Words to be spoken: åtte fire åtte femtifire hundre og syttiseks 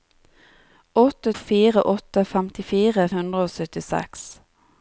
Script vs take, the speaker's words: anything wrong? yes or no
no